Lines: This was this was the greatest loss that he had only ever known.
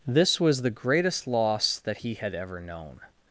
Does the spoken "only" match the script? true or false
false